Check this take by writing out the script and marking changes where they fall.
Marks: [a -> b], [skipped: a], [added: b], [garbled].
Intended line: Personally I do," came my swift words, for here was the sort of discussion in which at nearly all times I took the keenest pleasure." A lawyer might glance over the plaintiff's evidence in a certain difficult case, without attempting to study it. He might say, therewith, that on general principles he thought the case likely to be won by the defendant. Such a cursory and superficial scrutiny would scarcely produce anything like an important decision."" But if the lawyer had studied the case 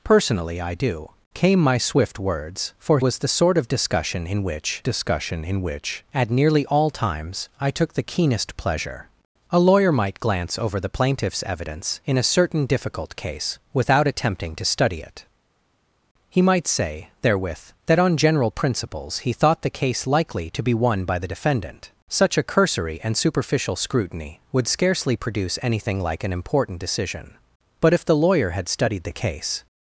Personally I do," came my swift words, for [skipped: here] was the sort of discussion in which [added: discussion in which] at nearly all times I took the keenest pleasure." A lawyer might glance over the plaintiff's evidence in a certain difficult case, without attempting to study it. He might say, therewith, that on general principles he thought the case likely to be won by the defendant. Such a cursory and superficial scrutiny would scarcely produce anything like an important decision."" But if the lawyer had studied the case